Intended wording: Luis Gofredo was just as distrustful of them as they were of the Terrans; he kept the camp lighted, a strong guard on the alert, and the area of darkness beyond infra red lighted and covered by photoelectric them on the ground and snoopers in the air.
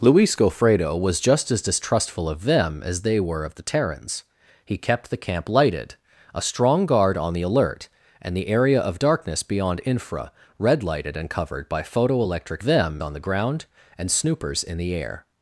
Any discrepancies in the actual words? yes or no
no